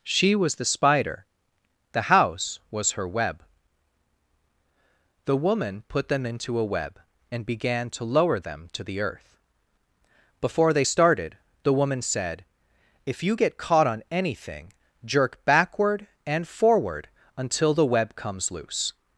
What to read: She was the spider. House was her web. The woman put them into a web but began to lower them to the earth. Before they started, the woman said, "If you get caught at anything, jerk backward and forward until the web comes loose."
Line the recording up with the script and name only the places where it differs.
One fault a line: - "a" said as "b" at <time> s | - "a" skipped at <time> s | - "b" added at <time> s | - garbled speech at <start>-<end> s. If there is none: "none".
- "The" added at 1.9 s
- "but" said as "and" at 7.3 s
- "at" said as "on" at 13.9 s